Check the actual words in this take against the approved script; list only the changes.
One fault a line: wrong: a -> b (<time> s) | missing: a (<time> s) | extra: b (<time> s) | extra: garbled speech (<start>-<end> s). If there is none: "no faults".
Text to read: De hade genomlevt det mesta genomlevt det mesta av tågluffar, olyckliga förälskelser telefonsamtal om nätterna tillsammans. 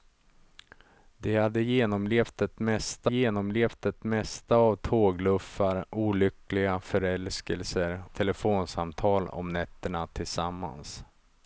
no faults